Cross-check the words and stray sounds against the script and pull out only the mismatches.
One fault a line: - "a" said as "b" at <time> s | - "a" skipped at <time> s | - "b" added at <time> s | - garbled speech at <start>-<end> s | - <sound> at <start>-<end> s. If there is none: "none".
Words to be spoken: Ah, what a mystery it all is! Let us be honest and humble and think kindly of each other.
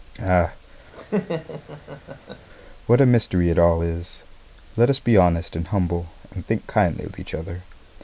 - laugh at 0.9-2.5 s